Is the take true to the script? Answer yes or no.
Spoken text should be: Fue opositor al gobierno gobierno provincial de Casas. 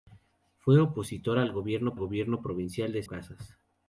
yes